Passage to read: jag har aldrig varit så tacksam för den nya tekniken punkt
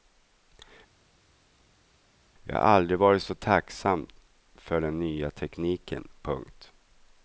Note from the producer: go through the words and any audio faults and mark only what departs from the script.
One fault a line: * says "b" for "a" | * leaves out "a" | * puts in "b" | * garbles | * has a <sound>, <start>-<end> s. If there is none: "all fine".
all fine